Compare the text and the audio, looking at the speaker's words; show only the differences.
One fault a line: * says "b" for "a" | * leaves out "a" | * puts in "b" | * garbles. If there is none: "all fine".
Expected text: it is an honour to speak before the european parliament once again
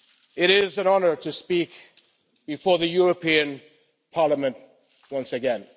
all fine